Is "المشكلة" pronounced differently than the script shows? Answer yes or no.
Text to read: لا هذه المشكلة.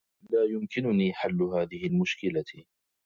no